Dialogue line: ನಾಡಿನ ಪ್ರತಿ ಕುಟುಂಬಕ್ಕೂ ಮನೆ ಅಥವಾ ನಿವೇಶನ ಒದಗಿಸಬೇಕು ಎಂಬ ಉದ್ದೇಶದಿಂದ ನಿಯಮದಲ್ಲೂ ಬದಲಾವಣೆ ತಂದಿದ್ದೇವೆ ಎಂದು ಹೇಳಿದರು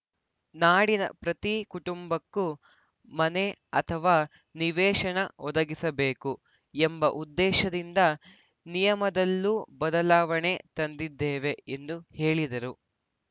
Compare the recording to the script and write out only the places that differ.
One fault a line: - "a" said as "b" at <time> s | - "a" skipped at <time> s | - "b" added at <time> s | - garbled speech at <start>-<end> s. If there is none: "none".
none